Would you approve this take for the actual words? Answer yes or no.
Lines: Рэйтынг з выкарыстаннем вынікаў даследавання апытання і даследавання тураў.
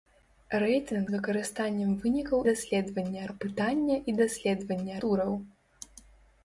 yes